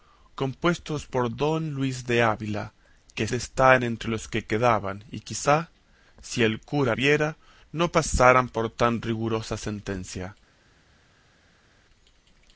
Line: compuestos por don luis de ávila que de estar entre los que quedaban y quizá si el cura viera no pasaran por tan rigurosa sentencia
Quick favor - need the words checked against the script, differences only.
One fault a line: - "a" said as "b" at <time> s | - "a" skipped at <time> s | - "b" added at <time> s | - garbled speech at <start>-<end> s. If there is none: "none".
none